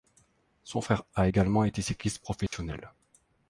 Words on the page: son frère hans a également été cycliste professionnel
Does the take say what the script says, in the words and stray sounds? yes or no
no